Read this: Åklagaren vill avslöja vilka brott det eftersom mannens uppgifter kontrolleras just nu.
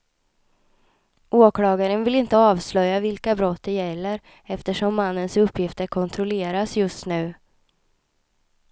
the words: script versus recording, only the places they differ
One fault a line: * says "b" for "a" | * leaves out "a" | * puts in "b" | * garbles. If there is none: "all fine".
* puts in "inte"
* puts in "gäller"